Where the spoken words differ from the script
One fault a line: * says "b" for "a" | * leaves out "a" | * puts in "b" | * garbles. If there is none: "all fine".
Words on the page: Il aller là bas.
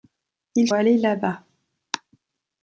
all fine